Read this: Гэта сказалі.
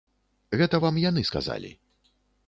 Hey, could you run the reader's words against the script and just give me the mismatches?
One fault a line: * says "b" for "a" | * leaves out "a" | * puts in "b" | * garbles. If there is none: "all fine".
* puts in "вам яны"